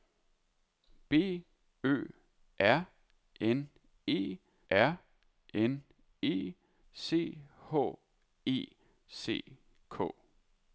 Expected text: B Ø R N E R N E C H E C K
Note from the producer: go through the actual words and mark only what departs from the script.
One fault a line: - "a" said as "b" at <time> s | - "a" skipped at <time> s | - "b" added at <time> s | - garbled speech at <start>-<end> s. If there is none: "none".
none